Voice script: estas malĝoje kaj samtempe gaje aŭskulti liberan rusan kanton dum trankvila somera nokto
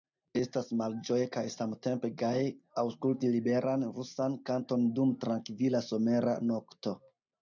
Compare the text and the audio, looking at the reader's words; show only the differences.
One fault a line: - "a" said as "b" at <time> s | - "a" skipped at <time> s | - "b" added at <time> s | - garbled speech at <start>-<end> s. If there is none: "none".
none